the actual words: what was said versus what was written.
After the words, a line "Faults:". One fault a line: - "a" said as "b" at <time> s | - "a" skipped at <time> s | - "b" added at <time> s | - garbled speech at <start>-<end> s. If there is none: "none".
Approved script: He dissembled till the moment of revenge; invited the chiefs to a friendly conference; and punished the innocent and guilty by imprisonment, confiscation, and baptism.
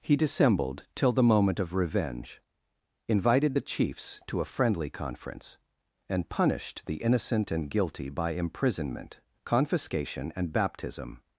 He dissembled till the moment of revenge; invited the chiefs to a friendly conference; and punished the innocent and guilty by imprisonment, confiscation, and baptism.
Faults:
none